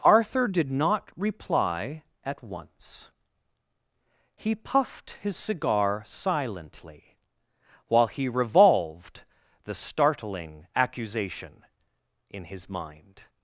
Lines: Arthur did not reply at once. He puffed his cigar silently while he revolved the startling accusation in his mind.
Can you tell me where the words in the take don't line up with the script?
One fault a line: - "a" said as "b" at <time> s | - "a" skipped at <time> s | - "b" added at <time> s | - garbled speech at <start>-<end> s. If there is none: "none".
none